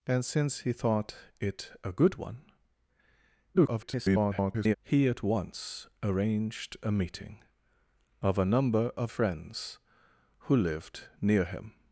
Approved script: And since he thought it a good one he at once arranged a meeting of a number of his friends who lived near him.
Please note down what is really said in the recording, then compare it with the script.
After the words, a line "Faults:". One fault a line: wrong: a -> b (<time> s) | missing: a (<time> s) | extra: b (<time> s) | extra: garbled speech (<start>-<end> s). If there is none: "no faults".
And since he thought it a good one [garbled] he at once arranged a meeting of a number of friends who lived near him.
Faults:
extra: garbled speech (3.5-4.8 s)
missing: his (9.1 s)